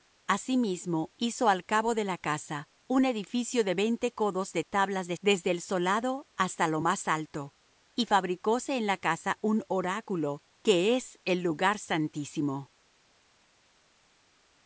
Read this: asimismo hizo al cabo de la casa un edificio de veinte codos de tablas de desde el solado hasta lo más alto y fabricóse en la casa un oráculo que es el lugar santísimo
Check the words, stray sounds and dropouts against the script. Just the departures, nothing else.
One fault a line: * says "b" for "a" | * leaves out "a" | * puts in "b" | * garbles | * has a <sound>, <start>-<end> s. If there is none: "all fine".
all fine